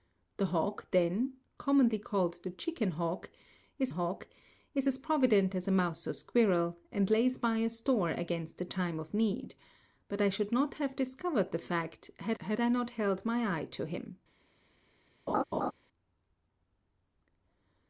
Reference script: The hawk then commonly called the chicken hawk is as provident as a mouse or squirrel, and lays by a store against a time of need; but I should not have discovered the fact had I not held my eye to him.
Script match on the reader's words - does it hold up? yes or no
no